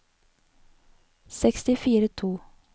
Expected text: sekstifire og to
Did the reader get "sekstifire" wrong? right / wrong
right